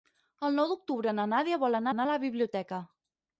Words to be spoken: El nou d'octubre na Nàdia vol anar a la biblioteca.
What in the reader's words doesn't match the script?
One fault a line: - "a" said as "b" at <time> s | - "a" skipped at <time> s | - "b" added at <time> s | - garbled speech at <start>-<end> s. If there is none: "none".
- "anar" added at 1.9 s